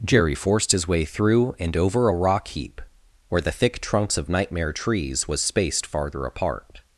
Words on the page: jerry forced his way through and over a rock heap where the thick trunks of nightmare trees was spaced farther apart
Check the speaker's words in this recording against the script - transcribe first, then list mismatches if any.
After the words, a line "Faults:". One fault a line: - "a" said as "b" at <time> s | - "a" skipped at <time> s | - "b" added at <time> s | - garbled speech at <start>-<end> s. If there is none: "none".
jerry forced his way through and over a rock heap where the thick trunks of nightmare trees was spaced farther apart
Faults:
none